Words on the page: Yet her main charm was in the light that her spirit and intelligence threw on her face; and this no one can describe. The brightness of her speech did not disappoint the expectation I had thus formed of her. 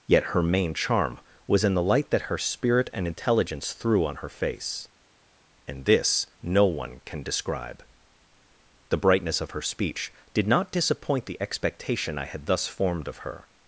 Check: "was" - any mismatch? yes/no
no